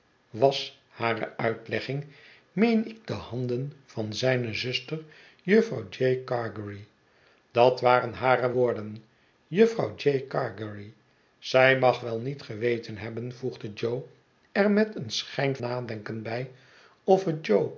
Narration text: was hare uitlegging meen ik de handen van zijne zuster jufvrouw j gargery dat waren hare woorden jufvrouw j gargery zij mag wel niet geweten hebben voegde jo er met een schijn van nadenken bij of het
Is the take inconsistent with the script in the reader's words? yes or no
yes